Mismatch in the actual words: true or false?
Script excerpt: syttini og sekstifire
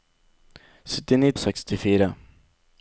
false